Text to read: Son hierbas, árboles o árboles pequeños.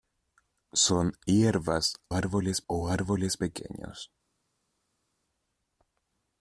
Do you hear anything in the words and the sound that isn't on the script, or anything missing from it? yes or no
no